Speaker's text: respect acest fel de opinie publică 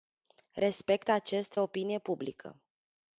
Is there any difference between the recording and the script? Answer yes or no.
yes